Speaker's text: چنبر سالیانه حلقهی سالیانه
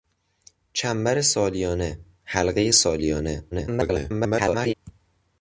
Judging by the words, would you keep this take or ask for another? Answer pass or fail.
fail